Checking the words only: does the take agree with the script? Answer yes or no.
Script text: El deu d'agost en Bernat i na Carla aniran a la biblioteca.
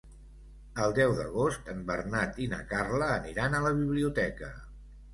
yes